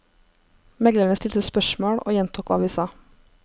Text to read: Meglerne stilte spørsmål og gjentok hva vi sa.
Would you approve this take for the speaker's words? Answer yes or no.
yes